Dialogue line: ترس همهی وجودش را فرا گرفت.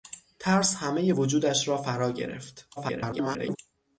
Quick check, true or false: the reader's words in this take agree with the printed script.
false